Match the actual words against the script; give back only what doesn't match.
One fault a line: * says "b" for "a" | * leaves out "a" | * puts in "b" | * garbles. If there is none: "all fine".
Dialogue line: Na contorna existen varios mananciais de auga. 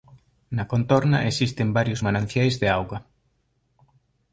all fine